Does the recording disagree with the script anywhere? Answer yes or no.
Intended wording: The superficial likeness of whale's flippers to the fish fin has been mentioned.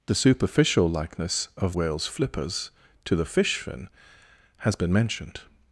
no